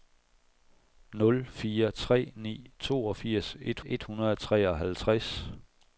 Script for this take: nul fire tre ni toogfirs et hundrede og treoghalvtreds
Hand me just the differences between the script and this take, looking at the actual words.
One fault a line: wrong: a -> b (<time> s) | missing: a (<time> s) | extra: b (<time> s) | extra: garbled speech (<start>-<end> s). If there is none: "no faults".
extra: et (3.8 s)